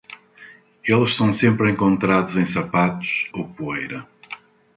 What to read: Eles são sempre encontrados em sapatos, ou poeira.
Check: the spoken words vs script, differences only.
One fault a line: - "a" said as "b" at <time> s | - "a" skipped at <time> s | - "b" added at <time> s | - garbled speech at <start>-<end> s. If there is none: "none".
none